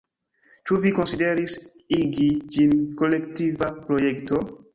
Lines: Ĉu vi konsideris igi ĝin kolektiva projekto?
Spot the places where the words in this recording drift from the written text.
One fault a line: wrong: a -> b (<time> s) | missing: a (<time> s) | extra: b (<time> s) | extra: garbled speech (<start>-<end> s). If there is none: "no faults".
no faults